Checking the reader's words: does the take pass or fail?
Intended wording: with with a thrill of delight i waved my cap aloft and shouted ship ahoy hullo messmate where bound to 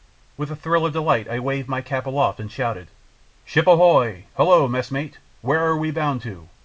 fail